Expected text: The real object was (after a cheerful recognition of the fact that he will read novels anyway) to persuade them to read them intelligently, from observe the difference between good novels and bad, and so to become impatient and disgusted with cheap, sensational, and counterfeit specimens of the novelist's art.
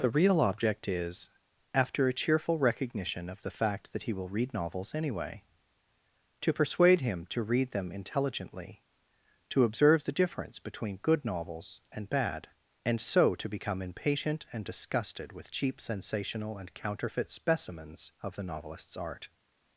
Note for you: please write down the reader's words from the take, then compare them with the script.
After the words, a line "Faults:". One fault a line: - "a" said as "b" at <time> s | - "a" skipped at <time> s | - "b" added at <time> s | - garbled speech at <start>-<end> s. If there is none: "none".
The real object is (after a cheerful recognition of the fact that he will read novels anyway) to persuade him to read them intelligently, to observe the difference between good novels and bad, and so to become impatient and disgusted with cheap, sensational, and counterfeit specimens of the novelist's art.
Faults:
- "was" said as "is" at 0.9 s
- "them" said as "him" at 7.0 s
- "from" said as "to" at 9.5 s